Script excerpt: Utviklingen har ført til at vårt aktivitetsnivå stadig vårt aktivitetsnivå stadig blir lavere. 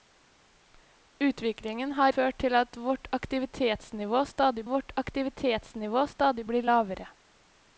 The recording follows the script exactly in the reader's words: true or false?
true